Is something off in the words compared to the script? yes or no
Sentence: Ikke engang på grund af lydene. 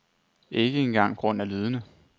yes